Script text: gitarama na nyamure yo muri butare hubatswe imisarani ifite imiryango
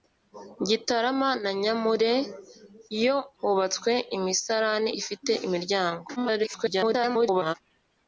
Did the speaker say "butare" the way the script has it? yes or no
no